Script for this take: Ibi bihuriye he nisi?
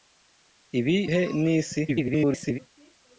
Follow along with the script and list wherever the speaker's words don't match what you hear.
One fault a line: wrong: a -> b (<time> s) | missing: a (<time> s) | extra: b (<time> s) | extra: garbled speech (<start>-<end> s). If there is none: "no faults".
missing: bihuriye (1.0 s)
extra: garbled speech (1.9-2.6 s)